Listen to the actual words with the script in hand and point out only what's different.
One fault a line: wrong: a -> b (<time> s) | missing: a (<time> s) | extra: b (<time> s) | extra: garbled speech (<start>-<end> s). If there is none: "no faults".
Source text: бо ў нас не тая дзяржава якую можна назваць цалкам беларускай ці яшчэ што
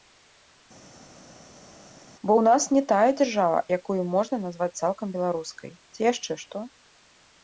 no faults